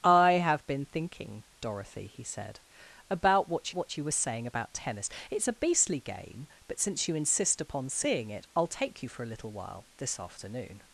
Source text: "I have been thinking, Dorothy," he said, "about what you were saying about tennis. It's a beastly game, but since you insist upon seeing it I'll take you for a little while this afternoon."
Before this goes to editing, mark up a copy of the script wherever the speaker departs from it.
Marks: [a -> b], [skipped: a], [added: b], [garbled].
"I have been thinking, Dorothy," he said, "about what [added: what] you were saying about tennis. It's a beastly game, but since you insist upon seeing it I'll take you for a little while this afternoon."